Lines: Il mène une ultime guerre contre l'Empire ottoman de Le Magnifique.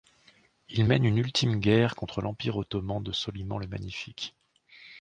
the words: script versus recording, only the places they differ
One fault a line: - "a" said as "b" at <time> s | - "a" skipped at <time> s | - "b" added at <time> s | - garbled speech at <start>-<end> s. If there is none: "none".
- "Soliman" added at 3.1 s